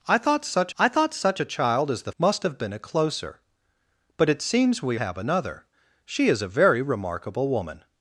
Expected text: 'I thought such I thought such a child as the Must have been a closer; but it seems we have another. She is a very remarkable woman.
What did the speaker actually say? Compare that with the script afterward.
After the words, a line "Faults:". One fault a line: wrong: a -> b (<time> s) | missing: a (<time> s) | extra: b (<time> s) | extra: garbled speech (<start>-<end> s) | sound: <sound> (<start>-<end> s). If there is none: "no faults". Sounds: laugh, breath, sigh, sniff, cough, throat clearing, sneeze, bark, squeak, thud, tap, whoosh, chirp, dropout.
'I thought such I thought such a child as the Must have been a closer; but it seems we have another. She is a very remarkable woman.
Faults:
no faults